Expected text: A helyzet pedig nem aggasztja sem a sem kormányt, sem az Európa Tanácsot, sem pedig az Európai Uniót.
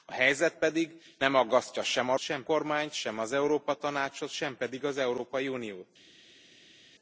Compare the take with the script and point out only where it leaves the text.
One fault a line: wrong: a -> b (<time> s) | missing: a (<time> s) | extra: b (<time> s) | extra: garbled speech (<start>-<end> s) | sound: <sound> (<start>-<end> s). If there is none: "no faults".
no faults